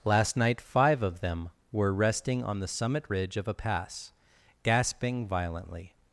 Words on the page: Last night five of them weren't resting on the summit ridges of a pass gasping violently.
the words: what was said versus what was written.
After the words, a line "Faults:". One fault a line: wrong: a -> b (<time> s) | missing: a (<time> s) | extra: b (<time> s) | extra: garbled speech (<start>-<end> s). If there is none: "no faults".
Last night five of them were resting on the summit ridge of a pass gasping violently.
Faults:
wrong: weren't -> were (1.7 s)
wrong: ridges -> ridge (3.1 s)